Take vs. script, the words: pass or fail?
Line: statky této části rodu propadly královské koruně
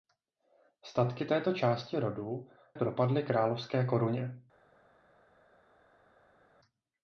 pass